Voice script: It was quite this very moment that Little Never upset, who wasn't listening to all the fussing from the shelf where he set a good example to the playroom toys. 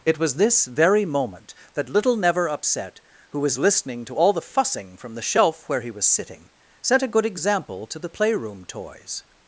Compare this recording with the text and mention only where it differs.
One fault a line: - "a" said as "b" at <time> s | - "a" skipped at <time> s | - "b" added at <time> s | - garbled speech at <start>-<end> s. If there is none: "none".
- "quite" skipped at 0.3 s
- "wasn't" said as "was" at 3.4 s
- "was sitting" added at 5.9 s